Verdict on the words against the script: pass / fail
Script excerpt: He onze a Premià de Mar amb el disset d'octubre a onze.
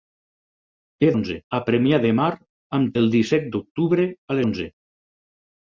pass